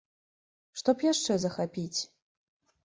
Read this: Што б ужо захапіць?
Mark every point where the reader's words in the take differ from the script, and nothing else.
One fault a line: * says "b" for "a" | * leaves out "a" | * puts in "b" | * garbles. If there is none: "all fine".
* says "яшчэ" for "ужо"